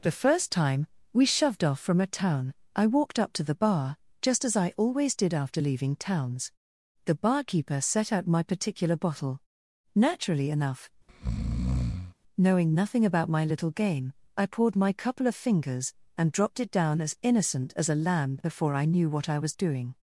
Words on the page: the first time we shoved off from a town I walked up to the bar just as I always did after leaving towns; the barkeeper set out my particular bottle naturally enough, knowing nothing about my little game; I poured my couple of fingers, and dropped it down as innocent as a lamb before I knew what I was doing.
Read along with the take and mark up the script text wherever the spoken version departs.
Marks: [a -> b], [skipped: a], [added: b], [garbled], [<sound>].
the first time we shoved off from a town I walked up to the bar just as I always did after leaving towns; the barkeeper set out my particular bottle naturally enough, [breath] knowing nothing about my little game; I poured my couple of fingers, and dropped it down as innocent as a lamb before I knew what I was doing.